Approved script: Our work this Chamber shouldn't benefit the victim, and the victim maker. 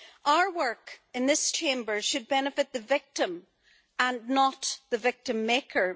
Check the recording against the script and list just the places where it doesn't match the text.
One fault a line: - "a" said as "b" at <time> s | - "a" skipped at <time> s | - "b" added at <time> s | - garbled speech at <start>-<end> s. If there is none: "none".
- "in" added at 1.1 s
- "shouldn't" said as "should" at 2.0 s
- "not" added at 4.3 s